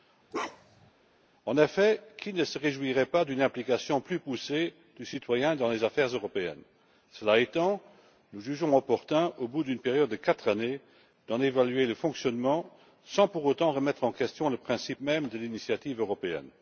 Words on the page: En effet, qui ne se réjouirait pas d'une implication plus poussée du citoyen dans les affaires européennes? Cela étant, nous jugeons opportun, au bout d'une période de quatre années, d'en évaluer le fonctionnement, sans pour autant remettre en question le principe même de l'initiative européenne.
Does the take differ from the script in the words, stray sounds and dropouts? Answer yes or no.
yes